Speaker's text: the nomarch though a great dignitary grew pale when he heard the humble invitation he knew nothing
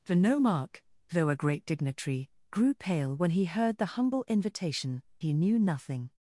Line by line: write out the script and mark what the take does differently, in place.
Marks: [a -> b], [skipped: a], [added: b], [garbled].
the nomarch though a great dignitary grew pale when he heard the humble invitation he knew nothing